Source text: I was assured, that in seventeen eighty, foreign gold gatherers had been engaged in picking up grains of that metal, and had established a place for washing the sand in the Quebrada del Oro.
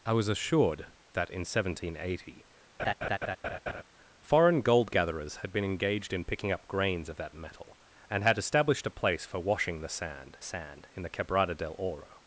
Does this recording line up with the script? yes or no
no